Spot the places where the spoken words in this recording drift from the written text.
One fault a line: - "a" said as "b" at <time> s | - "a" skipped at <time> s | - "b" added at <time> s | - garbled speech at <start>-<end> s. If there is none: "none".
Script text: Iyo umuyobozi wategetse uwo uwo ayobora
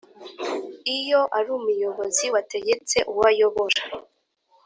- "ari" added at 1.4 s
- "uwo" skipped at 3.2 s